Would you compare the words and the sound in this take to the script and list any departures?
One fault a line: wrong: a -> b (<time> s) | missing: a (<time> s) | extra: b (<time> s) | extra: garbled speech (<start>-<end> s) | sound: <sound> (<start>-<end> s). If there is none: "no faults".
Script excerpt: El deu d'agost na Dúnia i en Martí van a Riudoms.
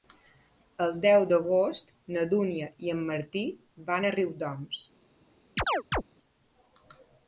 sound: chirp (5.6-6.0 s)